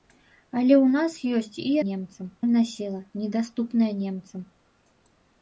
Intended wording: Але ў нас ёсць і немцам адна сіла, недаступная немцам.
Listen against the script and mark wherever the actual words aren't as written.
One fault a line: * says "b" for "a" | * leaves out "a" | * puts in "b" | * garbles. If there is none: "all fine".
all fine